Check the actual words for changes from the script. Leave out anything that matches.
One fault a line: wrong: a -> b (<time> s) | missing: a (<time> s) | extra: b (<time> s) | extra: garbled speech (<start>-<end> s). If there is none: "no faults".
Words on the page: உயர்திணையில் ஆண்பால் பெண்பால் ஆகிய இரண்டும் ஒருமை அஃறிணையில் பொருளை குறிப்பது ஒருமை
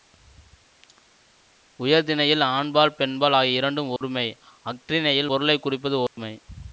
no faults